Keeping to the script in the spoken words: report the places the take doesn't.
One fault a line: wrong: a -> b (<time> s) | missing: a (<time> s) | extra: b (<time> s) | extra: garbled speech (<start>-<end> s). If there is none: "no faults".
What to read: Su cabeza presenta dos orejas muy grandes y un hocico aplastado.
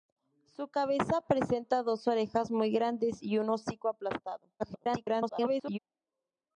extra: garbled speech (4.6-5.8 s)